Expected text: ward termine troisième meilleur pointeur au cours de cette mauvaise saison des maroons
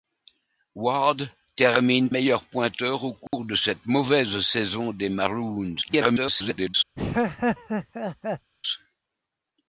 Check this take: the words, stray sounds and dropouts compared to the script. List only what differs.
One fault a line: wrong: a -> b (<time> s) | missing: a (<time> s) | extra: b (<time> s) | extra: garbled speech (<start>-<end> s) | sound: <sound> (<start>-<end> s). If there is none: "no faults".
missing: troisième (2.1 s)
sound: dropout (3.3-3.3 s)
extra: garbled speech (5.8-6.7 s)
sound: laugh (7.0-8.5 s)